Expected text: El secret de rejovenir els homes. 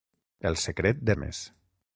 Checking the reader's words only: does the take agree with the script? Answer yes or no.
no